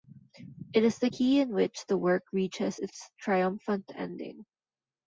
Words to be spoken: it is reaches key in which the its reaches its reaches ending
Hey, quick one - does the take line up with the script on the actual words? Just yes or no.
no